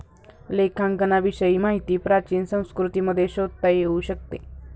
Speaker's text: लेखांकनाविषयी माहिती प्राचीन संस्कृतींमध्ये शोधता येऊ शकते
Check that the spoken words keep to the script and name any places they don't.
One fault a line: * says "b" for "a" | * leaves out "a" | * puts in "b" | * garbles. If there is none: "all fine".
all fine